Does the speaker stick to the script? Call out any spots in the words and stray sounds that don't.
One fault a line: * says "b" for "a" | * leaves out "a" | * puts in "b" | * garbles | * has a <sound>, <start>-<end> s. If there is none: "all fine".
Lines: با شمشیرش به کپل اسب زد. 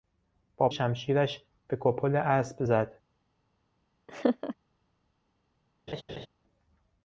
* has a laugh, 4.1-4.6 s
* has a laugh, 5.9-6.3 s